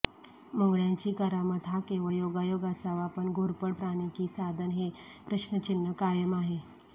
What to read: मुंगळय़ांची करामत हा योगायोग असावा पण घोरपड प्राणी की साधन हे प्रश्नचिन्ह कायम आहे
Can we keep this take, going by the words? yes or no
no